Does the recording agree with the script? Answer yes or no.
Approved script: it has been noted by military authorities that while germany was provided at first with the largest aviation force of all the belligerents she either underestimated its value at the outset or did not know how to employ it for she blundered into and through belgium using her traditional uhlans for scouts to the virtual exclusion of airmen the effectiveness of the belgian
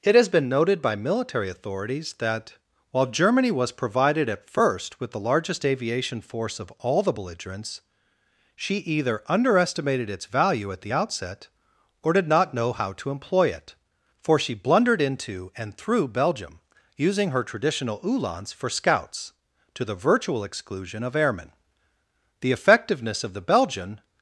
yes